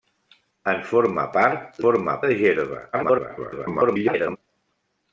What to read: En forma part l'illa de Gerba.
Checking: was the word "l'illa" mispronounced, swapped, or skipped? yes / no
yes